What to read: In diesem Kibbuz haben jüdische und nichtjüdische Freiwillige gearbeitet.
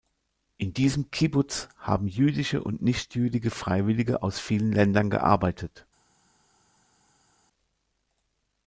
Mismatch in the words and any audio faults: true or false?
true